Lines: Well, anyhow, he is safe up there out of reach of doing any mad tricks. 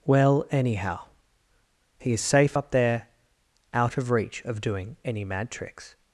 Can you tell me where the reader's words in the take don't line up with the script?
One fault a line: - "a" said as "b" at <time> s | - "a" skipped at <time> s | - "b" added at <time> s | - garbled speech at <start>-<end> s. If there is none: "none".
none